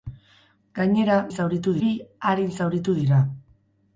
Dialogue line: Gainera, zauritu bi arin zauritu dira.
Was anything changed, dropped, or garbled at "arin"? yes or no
no